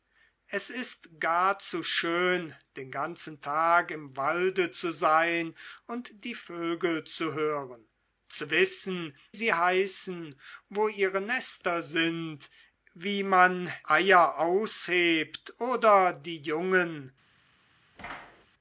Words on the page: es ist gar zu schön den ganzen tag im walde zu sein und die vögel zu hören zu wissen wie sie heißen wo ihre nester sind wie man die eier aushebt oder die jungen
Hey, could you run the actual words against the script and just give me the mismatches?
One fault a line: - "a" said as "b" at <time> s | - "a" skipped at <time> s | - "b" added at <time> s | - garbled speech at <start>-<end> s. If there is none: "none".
- "wie" skipped at 9.2 s
- "die" skipped at 13.7 s